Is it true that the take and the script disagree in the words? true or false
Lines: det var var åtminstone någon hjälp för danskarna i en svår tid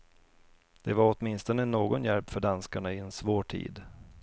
true